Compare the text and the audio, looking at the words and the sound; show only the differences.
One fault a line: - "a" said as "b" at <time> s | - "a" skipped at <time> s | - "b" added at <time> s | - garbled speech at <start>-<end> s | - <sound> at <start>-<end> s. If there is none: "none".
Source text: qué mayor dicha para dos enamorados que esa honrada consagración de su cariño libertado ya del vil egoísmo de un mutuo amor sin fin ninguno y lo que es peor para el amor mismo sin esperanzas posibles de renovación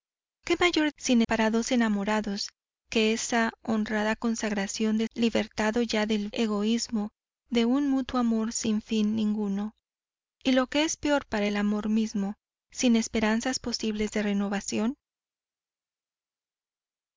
- "dicha" said as "sin" at 1.0 s
- "su cariño" skipped at 5.1 s
- "vil" skipped at 6.3 s